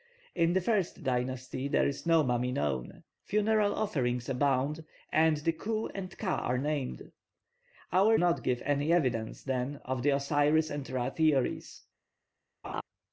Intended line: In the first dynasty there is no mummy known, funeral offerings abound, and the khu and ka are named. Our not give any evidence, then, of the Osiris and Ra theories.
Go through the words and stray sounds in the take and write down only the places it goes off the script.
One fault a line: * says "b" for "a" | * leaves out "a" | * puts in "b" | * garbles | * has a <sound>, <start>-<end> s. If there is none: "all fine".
* has a laugh, 12.6-12.8 s